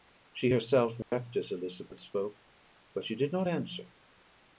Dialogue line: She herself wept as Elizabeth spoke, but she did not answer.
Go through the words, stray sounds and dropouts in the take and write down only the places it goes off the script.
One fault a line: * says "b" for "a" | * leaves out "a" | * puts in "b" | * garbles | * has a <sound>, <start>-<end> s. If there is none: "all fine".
* has a dropout, 1.0-1.1 s